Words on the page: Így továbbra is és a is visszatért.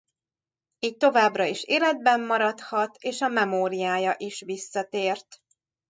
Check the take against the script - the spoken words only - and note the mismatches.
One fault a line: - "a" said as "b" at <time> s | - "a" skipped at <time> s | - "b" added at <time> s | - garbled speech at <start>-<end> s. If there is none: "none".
- "életben maradhat" added at 1.6 s
- "memóriája" added at 3.3 s